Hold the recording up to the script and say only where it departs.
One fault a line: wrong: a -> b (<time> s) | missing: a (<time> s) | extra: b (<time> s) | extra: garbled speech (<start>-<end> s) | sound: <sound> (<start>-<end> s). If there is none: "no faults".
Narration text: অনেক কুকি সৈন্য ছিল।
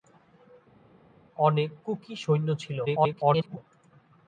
extra: garbled speech (2.9-3.6 s)